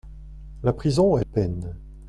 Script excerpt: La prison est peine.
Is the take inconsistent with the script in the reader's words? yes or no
no